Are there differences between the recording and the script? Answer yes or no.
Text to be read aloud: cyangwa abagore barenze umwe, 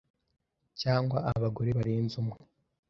no